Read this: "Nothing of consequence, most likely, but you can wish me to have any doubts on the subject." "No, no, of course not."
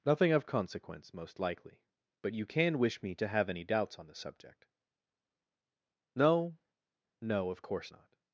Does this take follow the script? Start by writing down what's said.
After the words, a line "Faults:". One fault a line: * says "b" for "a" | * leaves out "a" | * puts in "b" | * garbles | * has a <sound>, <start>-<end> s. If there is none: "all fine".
"Nothing of consequence, most likely, but you can wish me to have any doubts on the subject." "No, no, of course not."
Faults:
all fine